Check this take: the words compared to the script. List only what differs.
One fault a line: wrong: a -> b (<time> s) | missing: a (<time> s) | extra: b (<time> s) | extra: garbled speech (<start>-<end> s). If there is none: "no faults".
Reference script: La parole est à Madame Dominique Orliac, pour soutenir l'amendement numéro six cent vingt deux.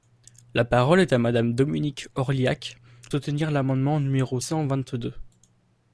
missing: pour (2.8 s)
missing: six (4.4 s)